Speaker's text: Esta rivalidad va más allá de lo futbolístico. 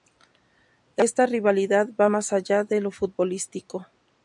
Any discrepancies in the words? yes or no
no